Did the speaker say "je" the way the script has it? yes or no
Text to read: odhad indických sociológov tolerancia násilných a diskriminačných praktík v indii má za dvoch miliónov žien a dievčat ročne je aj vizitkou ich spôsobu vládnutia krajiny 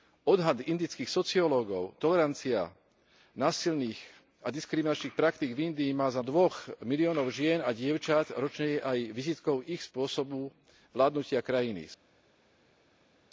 yes